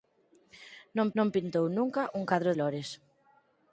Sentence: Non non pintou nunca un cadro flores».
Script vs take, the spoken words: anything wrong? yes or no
no